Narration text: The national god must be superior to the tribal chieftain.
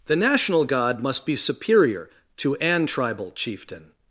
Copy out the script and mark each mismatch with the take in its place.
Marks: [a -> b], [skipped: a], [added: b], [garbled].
The national god must be superior to [the -> an] tribal chieftain.